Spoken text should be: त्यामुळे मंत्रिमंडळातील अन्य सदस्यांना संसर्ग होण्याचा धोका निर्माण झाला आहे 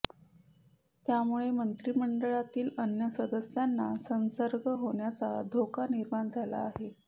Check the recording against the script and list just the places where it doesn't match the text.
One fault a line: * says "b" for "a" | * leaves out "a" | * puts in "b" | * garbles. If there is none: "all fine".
all fine